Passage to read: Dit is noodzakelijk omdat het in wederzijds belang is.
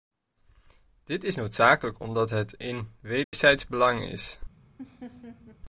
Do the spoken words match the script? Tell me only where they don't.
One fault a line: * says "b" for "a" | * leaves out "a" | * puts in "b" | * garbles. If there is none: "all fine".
all fine